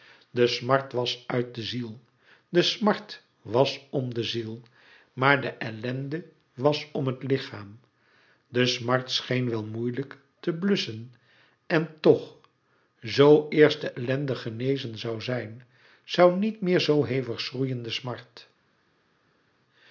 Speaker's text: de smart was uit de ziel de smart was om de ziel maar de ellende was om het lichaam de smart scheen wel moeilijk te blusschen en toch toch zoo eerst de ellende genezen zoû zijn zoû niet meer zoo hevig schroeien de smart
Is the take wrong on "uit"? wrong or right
right